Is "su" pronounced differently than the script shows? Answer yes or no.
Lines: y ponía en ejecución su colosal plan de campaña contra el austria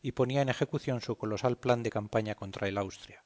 no